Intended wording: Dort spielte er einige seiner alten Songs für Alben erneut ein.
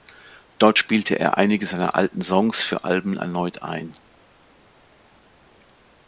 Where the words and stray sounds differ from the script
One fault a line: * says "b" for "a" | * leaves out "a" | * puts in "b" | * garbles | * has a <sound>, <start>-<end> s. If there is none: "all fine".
all fine